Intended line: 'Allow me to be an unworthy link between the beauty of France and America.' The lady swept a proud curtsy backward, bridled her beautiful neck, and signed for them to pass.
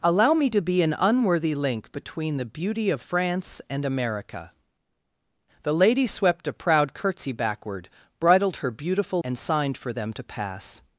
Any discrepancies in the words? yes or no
yes